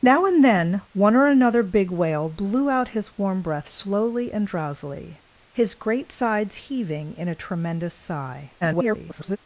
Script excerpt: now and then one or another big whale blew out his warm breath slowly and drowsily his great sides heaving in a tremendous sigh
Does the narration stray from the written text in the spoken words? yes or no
yes